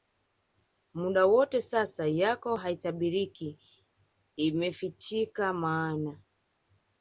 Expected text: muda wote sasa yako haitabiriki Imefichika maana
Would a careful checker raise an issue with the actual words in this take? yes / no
no